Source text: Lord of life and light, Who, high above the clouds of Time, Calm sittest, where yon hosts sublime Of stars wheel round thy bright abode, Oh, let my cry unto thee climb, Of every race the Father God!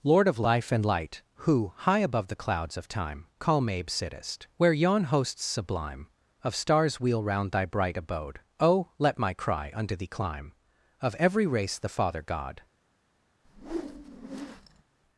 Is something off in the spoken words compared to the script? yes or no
yes